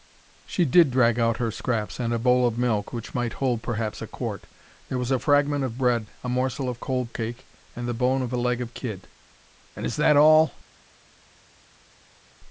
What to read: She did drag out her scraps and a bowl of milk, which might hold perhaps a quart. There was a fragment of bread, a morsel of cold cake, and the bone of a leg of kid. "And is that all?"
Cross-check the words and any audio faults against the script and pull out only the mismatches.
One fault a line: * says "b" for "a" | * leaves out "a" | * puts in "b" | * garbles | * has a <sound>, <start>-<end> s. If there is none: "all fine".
all fine